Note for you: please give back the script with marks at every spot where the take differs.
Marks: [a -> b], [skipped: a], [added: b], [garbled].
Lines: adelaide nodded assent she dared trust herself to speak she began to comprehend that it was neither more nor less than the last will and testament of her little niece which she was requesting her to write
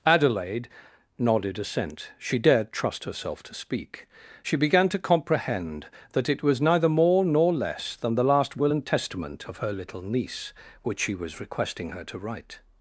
adelaide nodded assent she dared trust herself to speak she began to comprehend that it was neither more nor less than the last will and testament of her little niece which she was requesting her to write